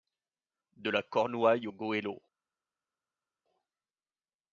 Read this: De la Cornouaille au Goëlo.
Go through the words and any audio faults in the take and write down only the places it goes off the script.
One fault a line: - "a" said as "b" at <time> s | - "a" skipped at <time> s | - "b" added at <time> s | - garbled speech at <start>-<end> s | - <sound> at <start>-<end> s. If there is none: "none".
none